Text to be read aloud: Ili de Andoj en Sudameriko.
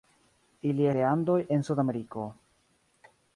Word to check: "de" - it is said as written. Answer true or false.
true